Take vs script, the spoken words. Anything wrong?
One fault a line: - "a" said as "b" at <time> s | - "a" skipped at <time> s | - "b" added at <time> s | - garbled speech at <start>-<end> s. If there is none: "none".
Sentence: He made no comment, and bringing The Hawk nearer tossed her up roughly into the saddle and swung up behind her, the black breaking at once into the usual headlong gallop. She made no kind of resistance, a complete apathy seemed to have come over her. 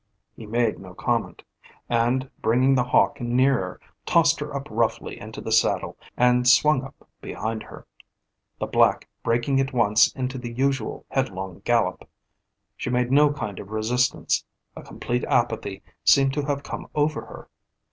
none